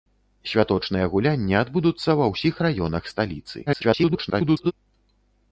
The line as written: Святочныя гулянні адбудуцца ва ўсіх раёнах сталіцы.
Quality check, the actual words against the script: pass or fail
fail